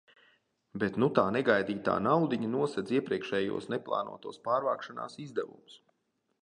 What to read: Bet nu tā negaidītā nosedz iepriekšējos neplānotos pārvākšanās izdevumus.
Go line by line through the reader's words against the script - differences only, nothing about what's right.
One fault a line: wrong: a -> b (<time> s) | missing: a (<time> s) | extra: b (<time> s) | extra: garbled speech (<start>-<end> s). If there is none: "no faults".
extra: naudiņa (2.1 s)